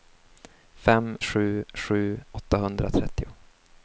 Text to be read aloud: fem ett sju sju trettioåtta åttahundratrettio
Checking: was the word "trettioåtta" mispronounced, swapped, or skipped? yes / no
yes